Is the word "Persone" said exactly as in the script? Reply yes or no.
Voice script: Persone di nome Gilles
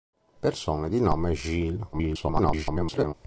yes